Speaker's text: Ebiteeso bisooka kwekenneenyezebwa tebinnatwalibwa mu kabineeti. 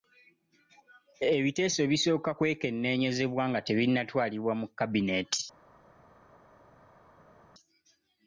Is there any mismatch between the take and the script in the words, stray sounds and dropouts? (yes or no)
yes